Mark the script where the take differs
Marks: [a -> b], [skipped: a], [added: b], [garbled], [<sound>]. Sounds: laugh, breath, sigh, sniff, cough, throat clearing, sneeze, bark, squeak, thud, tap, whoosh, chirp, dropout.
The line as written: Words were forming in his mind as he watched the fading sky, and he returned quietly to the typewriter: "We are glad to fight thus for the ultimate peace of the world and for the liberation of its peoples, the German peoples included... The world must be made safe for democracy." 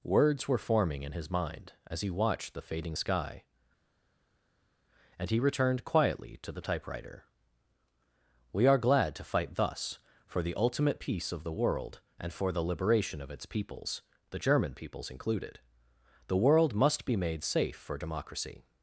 Words were forming in his mind as he watched the fading sky, and he returned quietly to the typewriter: "We are glad to fight thus for the ultimate peace of the world and for the liberation of its peoples, the German peoples included... The world must be made safe for democracy."